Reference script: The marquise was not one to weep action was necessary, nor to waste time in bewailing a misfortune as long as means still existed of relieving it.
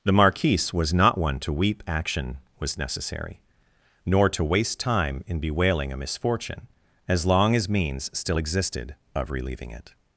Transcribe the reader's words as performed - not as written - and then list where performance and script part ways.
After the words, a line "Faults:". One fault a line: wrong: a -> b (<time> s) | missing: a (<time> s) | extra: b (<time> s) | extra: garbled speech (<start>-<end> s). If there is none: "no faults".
The marquise was not one to weep action was necessary, nor to waste time in bewailing a misfortune as long as means still existed of relieving it.
Faults:
no faults